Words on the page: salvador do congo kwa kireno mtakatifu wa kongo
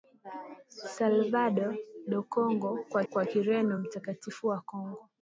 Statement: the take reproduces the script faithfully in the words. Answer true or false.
false